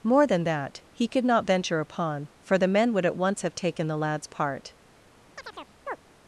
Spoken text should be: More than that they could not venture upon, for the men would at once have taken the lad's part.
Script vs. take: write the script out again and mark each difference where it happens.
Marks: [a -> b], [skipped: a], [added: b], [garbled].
More than that [they -> he] could not venture upon, for the men would at once have taken the lad's part.